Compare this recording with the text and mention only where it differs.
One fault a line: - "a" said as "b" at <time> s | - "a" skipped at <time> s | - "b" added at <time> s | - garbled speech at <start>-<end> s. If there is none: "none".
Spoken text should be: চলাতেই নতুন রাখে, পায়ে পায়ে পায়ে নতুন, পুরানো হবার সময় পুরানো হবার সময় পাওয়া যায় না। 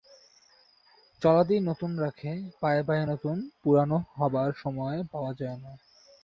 - "পায়ে" skipped at 3.0 s
- "পুরানো হবার সময়" skipped at 5.0 s